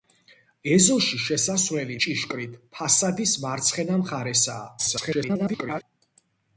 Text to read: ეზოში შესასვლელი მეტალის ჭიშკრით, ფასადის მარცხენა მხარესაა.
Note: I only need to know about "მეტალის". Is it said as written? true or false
false